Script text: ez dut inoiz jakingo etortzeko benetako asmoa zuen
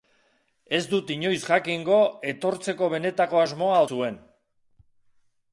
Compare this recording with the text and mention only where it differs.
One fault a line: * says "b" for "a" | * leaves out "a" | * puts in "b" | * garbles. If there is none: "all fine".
all fine